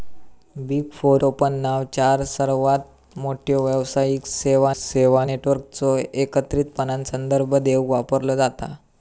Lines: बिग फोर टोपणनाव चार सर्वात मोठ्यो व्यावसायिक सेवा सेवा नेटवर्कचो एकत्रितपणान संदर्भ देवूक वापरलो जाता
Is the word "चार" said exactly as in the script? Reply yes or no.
yes